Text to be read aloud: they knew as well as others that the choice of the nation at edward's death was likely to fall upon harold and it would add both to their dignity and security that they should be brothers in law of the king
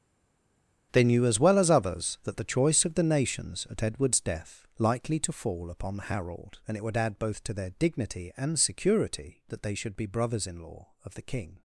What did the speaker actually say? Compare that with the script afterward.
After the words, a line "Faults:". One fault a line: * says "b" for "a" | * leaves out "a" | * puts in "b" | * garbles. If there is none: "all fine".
they knew as well as others that the choice of the nations at edward's death likely to fall upon harold and it would add both to their dignity and security that they should be brothers in law of the king
Faults:
* says "nations" for "nation"
* leaves out "was"